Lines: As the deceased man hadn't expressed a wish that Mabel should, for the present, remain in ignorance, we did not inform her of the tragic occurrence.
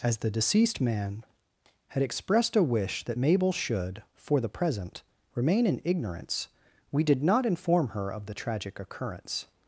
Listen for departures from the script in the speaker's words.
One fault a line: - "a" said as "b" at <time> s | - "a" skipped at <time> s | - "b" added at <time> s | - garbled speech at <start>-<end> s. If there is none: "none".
- "hadn't" said as "had" at 1.9 s